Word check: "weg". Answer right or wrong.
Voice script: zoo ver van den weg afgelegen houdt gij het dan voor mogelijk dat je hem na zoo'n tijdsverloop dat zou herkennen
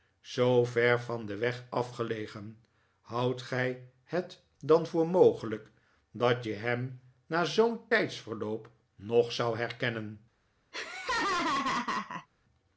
right